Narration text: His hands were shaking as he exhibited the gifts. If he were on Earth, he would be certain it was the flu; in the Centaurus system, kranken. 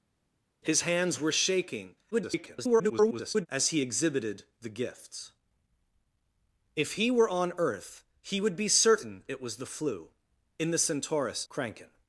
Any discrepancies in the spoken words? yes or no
yes